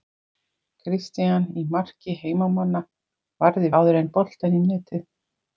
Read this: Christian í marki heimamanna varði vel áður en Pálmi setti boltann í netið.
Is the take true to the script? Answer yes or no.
no